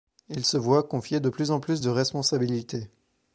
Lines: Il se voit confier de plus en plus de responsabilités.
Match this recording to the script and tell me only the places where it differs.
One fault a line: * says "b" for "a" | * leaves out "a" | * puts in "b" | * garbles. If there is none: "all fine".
all fine